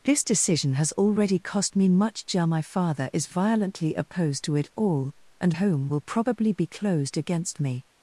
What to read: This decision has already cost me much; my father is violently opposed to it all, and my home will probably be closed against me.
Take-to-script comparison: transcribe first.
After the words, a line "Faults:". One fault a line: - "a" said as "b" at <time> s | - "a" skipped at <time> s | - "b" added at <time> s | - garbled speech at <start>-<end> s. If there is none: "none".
This decision has already cost me much; my father is violently opposed to it all, and home will probably be closed against me.
Faults:
- "my" skipped at 5.5 s